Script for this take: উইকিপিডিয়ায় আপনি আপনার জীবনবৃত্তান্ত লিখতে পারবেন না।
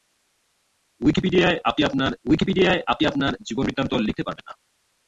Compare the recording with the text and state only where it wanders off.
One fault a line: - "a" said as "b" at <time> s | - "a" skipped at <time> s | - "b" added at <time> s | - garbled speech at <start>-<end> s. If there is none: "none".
- "উইকিপিডিয়ায় আপনি আপনার" added at 2.3 s